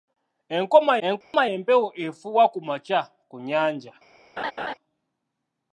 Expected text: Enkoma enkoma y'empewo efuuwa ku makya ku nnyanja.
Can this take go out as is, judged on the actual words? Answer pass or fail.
pass